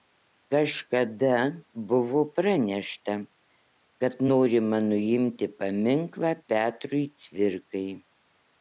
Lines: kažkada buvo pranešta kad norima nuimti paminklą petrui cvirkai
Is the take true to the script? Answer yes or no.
yes